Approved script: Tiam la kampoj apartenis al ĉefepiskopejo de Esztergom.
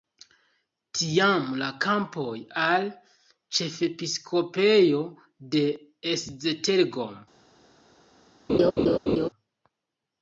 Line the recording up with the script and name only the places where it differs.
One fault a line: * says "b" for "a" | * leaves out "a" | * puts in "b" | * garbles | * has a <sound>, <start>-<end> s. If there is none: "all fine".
* leaves out "apartenis"
* has a laugh, 8.5-9.3 s